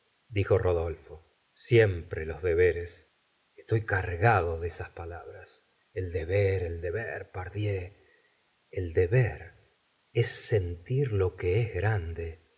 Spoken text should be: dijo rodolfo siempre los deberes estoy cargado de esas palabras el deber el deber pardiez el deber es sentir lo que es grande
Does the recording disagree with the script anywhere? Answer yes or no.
no